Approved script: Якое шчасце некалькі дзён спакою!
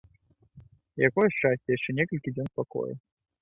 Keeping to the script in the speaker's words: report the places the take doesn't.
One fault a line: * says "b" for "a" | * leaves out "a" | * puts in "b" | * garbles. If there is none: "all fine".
* puts in "яшчэ"